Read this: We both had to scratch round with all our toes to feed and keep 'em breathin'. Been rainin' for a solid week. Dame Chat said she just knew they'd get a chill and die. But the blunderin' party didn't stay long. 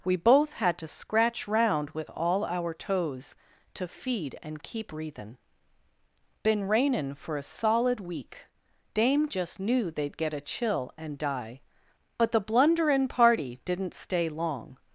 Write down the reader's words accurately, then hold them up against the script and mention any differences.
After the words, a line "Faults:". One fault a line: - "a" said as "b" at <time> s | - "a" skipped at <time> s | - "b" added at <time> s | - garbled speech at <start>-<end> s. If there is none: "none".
We both had to scratch round with all our toes to feed and keep 'breathin'. Been rainin' for a solid week. Dame Just knew they'd get a chill and die. But the blunderin' party didn't stay long.
Faults:
- "em" skipped at 4.9 s
- "Chat said she" skipped at 9.3 s